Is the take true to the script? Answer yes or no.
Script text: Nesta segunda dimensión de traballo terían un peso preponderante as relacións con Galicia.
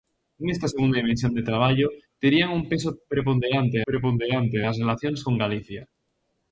no